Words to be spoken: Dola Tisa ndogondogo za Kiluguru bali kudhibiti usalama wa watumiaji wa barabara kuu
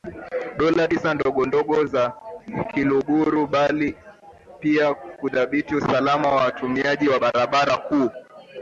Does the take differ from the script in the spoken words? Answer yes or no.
yes